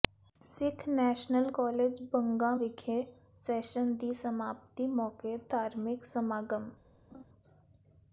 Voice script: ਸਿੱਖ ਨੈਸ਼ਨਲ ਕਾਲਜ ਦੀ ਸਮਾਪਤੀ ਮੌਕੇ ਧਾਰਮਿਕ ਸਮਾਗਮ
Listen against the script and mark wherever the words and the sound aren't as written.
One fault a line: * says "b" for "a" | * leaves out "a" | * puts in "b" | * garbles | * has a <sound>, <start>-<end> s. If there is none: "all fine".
* puts in "ਬੰਗਾ ਵਿਖੇ ਸੈਸ਼ਨ"
* has a laugh, 7.1-7.2 s